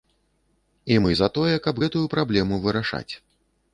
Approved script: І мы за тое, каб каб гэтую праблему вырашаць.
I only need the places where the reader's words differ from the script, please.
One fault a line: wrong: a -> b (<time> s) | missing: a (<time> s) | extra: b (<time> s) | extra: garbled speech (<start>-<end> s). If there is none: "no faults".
missing: каб (1.8 s)